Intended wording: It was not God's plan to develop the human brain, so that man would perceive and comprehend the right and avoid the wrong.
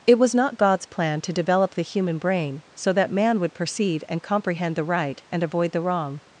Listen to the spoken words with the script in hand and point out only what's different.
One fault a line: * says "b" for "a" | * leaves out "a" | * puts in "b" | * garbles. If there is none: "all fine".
all fine